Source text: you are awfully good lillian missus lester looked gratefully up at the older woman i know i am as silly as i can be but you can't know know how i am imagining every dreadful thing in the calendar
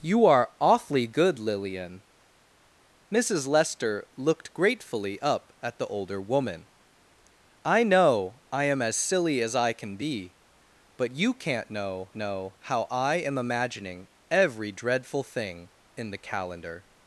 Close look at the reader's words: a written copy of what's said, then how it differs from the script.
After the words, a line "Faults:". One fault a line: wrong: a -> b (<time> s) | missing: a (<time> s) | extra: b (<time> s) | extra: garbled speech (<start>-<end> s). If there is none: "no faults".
you are awfully good lillian missus lester looked gratefully up at the older woman i know i am as silly as i can be but you can't know know how i am imagining every dreadful thing in the calendar
Faults:
no faults